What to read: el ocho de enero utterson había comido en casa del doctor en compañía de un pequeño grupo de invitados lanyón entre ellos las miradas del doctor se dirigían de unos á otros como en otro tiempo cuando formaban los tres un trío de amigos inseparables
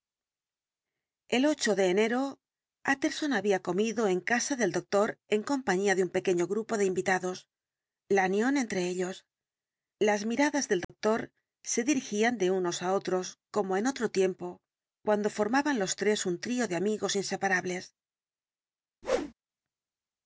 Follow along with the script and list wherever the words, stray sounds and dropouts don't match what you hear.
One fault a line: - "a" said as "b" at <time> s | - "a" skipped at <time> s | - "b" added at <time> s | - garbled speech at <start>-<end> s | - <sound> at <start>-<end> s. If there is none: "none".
- dropout at 10.8-10.9 s
- whoosh at 19.0-19.3 s